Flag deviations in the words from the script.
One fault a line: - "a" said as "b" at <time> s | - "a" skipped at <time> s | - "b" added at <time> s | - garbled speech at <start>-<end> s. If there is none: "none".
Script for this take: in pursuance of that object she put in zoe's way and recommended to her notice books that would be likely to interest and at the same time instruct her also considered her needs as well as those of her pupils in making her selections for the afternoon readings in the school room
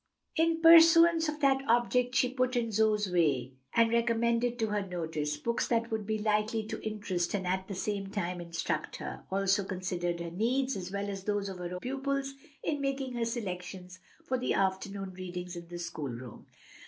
none